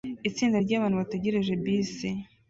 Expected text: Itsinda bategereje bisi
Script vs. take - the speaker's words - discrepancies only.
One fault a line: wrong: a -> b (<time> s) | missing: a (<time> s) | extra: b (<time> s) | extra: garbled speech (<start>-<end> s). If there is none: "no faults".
extra: ryabantu (0.6 s)